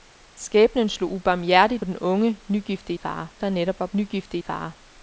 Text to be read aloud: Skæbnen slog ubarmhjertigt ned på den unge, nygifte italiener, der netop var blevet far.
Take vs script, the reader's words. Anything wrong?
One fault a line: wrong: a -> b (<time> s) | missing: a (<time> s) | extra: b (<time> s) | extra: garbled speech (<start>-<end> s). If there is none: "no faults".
missing: ned på (1.9 s)
wrong: italiener -> far (2.9 s)
wrong: blevet -> nygifte (3.9 s)